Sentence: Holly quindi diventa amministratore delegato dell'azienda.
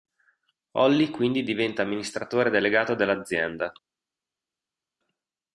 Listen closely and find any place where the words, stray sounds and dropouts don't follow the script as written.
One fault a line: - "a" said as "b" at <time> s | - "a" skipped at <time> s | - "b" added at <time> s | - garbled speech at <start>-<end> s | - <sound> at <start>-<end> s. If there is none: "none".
none